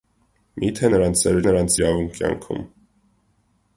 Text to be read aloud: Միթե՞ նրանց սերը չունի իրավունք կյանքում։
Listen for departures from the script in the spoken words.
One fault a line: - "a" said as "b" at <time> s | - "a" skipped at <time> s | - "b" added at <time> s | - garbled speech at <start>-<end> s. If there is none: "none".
- "չունի" said as "նրանց" at 1.5 s